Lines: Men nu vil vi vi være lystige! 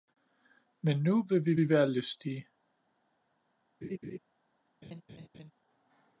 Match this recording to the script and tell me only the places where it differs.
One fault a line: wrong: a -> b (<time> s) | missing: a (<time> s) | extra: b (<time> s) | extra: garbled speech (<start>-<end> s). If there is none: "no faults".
no faults